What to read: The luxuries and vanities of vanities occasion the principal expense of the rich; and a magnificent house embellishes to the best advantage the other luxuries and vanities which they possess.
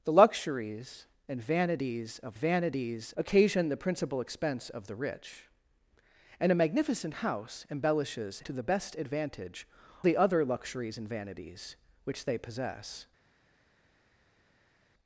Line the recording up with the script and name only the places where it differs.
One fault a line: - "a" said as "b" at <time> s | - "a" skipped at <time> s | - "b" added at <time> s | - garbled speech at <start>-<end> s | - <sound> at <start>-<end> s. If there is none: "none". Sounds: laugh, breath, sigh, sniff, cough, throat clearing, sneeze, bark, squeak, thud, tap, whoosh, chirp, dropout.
none